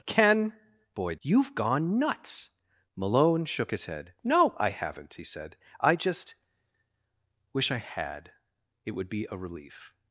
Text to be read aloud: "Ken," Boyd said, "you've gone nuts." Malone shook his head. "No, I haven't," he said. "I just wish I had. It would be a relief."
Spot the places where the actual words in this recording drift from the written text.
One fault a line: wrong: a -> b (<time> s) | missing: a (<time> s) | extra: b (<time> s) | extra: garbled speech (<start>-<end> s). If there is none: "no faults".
missing: said (1.2 s)